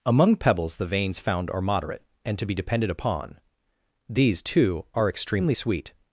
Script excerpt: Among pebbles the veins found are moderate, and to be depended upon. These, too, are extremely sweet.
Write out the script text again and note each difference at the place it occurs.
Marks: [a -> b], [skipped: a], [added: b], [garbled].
Among pebbles the veins found are moderate, and to be depended upon. These, too, are extremely sweet.